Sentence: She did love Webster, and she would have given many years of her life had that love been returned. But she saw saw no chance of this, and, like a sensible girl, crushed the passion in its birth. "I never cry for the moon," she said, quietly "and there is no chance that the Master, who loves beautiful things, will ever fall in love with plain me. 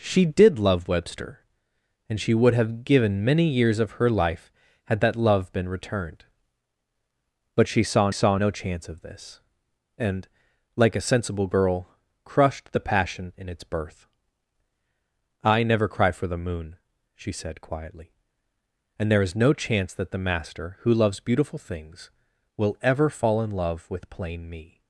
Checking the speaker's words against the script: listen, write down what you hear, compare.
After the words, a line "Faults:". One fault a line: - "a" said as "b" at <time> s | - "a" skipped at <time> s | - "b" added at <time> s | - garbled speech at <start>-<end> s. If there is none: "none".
She did love Webster, and she would have given many years of her life had that love been returned. But she saw saw no chance of this, and, like a sensible girl, crushed the passion in its birth. "I never cry for the moon," she said, quietly "and there is no chance that the Master, who loves beautiful things, will ever fall in love with plain me.
Faults:
none